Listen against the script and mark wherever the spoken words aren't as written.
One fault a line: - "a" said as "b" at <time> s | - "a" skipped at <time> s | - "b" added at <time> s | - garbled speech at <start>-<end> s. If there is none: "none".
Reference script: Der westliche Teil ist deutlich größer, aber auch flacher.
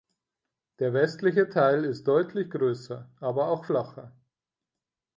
none